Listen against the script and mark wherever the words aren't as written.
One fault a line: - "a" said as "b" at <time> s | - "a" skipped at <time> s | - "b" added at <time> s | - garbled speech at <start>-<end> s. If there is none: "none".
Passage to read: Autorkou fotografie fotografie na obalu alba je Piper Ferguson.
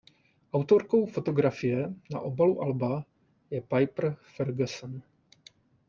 - "fotografie" skipped at 1.9 s